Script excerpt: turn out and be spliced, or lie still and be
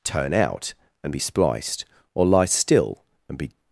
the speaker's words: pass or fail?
pass